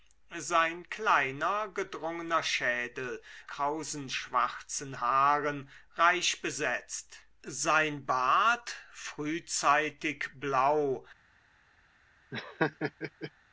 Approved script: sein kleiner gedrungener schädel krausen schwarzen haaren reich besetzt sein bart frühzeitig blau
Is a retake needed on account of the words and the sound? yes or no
yes